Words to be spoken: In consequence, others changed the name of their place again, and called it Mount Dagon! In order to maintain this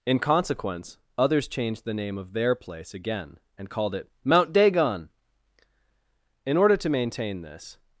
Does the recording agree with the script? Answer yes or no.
yes